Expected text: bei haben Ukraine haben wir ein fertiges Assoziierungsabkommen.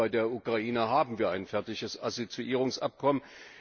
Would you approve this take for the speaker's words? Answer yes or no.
no